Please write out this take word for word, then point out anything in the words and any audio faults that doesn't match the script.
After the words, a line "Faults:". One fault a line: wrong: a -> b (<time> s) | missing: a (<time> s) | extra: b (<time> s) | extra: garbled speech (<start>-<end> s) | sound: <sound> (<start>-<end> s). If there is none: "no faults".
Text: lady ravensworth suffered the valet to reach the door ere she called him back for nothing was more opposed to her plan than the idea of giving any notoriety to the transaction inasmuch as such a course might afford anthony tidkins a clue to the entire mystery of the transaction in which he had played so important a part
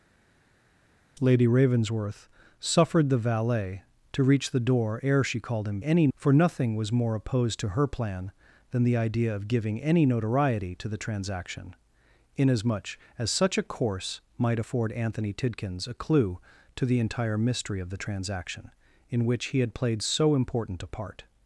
lady ravensworth suffered the valet to reach the door ere she called him any for nothing was more opposed to her plan than the idea of giving any notoriety to the transaction inasmuch as such a course might afford anthony tidkins a clue to the entire mystery of the transaction in which he had played so important a part
Faults:
wrong: back -> any (5.8 s)